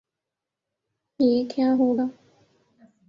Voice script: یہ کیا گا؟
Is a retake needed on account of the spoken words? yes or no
yes